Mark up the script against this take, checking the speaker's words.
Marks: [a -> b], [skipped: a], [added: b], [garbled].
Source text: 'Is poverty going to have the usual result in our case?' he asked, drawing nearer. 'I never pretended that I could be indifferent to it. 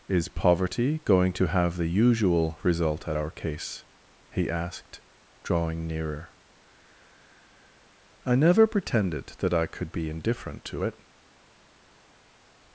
'Is poverty going to have the usual result [in -> at] our case?' he asked, drawing nearer. 'I never pretended that I could be indifferent to it.